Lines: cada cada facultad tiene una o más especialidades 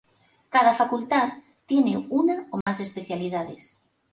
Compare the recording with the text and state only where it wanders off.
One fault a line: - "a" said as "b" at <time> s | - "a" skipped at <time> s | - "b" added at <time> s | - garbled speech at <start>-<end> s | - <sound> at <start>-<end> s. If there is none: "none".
- "cada" skipped at 0.7 s
- dropout at 2.6-2.7 s